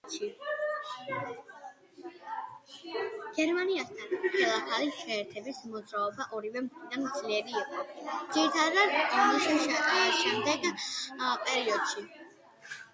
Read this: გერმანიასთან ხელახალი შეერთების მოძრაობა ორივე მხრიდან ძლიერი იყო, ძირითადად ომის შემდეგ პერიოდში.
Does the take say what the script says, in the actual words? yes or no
yes